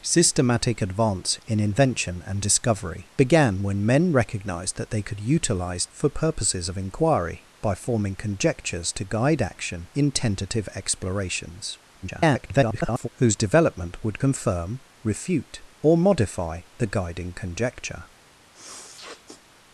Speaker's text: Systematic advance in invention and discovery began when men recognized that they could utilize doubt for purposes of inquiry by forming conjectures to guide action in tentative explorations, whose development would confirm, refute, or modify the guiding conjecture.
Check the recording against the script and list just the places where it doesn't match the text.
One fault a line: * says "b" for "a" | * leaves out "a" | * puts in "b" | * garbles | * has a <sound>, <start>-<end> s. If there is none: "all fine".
* leaves out "doubt"
* garbles
* has a sniff, 18.5-19.4 s